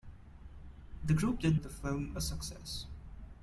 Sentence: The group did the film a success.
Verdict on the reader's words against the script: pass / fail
pass